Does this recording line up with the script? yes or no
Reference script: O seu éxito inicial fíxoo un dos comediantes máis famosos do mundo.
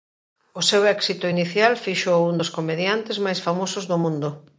yes